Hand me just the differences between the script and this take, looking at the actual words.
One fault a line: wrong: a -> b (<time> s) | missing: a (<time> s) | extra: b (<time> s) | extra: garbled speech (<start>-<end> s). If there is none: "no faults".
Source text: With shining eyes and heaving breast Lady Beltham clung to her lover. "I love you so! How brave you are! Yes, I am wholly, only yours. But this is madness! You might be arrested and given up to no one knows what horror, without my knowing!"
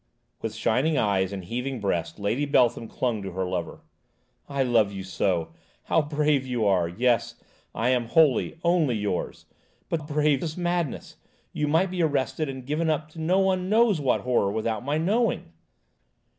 wrong: this -> brave (10.0 s)